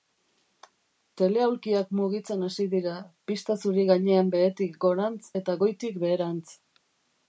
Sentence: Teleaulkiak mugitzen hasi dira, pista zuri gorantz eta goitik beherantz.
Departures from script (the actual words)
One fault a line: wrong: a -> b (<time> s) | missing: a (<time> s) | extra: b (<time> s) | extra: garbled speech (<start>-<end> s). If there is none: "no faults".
extra: gainean behetik (3.9 s)